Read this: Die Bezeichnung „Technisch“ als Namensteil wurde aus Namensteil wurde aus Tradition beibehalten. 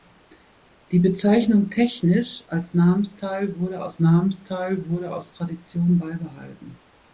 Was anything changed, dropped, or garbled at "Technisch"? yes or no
no